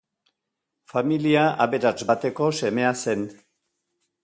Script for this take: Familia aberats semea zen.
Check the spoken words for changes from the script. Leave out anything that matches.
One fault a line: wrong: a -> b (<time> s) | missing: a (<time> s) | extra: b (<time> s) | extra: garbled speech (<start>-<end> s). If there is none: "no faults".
extra: bateko (2.1 s)